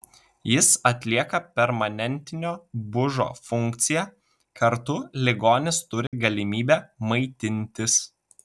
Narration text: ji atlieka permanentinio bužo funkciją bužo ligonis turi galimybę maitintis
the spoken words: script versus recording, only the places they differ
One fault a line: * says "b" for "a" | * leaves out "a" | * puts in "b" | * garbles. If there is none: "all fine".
* says "jis" for "ji"
* says "kartu" for "bužo"